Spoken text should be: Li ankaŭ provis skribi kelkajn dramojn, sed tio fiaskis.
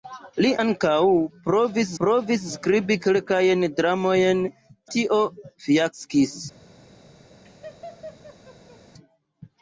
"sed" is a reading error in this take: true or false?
true